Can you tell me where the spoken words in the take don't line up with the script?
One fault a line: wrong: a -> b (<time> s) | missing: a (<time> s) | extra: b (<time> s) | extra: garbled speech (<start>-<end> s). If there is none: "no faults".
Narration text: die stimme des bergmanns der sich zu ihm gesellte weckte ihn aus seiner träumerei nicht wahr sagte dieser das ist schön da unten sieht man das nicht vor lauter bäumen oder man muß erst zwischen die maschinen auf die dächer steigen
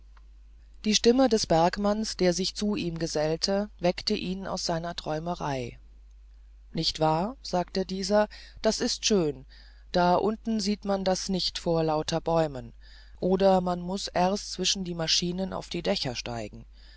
no faults